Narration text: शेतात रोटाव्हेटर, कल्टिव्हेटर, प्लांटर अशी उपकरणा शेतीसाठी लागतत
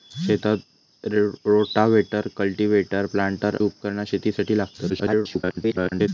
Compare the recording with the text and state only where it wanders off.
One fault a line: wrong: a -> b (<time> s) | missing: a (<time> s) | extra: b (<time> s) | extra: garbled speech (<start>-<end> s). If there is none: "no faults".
missing: अशी (3.6 s)
extra: garbled speech (4.9-6.1 s)